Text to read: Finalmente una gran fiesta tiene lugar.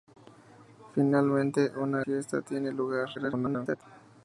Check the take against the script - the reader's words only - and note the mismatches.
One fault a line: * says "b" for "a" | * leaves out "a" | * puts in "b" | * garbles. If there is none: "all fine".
* leaves out "gran"
* garbles